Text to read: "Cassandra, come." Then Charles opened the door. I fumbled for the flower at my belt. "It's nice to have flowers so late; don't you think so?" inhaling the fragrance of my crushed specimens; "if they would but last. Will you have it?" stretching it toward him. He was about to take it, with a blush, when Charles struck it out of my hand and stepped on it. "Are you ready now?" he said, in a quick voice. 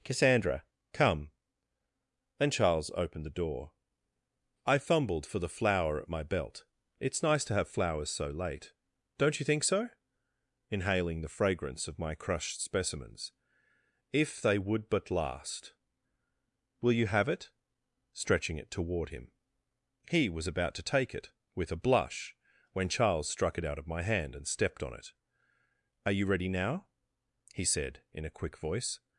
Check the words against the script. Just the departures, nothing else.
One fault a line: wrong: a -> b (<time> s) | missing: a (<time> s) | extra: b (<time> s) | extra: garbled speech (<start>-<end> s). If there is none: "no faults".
no faults